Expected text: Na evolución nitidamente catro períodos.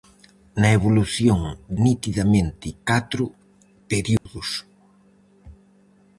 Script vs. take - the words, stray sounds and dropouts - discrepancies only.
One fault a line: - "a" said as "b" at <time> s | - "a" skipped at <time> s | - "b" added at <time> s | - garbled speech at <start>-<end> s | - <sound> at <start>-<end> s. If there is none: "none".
- dropout at 4.2-4.3 s